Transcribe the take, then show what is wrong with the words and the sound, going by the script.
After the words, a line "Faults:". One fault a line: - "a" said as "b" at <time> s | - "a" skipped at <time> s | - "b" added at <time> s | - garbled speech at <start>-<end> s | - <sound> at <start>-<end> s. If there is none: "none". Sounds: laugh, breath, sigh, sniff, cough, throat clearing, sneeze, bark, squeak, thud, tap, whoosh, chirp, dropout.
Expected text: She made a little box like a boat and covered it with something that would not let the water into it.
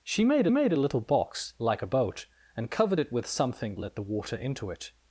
She made made a little box like a boat and covered it with something let the water into it.
Faults:
- "made" added at 0.5 s
- "that would not" skipped at 3.8 s